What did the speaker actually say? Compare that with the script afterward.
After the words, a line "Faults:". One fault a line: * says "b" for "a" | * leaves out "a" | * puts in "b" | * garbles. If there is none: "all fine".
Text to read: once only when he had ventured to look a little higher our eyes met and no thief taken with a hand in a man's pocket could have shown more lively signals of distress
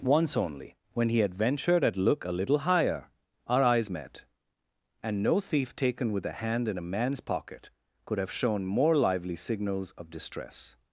once only when he had ventured at look a little higher our eyes met and no thief taken with a hand in a man's pocket could have shown more lively signals of distress
Faults:
* says "at" for "to"